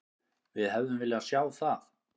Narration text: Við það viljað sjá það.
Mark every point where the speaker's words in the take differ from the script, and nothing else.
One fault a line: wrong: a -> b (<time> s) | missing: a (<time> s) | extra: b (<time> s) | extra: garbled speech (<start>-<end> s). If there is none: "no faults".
wrong: það -> hefðum (0.8 s)